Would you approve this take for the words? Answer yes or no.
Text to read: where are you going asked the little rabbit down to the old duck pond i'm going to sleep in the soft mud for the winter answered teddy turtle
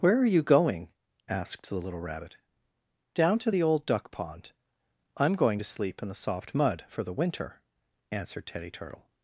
yes